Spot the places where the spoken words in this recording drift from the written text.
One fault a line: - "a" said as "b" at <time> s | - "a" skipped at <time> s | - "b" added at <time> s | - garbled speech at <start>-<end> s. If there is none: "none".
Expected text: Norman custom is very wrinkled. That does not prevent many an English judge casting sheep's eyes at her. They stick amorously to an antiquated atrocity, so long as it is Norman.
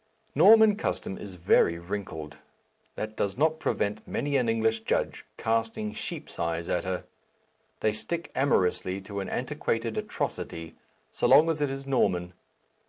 none